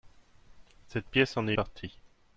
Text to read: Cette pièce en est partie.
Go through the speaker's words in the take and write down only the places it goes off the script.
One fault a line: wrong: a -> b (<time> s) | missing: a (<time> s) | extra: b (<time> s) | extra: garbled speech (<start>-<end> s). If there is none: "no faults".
no faults